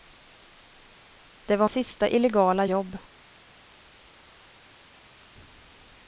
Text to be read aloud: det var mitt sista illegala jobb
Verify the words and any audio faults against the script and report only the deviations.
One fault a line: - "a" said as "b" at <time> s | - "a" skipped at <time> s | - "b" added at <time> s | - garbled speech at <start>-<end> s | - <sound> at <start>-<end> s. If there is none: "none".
- "mitt" skipped at 1.7 s